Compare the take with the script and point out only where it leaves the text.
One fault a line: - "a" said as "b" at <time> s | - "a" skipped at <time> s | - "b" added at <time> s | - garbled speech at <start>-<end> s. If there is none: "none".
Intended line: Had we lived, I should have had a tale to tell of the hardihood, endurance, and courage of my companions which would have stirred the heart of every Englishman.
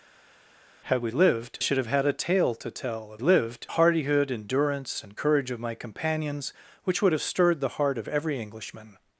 - "I" skipped at 1.6 s
- "the" said as "lived" at 3.2 s